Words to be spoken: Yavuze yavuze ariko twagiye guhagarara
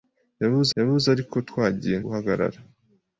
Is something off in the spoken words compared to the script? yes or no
no